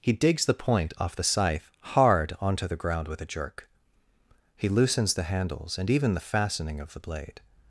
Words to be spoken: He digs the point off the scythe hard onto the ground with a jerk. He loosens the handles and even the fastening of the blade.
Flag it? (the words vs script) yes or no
no